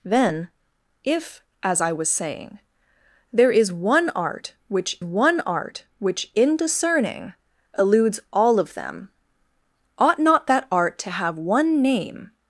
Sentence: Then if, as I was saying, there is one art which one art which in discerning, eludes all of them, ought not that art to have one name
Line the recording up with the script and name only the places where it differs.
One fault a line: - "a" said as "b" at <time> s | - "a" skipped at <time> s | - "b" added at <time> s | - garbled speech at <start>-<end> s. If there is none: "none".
none